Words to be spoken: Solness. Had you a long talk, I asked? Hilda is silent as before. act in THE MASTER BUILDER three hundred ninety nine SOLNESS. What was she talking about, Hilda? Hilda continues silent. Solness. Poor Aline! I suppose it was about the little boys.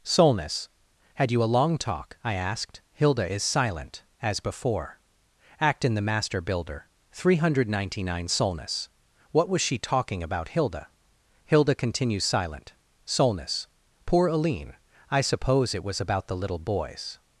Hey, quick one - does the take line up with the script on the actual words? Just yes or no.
yes